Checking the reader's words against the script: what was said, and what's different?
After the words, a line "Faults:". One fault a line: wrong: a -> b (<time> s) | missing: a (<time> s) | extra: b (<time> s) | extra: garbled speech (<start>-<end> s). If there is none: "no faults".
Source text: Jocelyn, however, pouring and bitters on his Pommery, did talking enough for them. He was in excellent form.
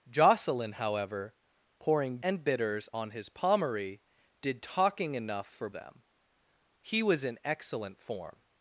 Jocelyn, however, pouring and bitters on his Pommery, did talking enough for them. He was in excellent form.
Faults:
no faults